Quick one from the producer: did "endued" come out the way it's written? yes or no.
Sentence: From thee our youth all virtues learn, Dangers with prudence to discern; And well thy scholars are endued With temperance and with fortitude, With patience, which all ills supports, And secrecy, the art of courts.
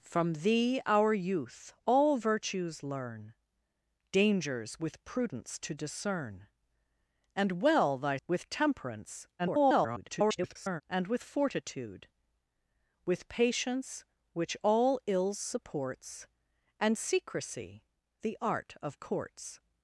no